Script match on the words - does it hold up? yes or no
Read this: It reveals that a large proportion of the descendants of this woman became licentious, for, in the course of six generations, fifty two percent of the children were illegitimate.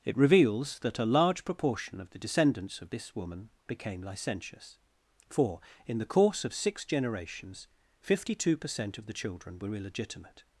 yes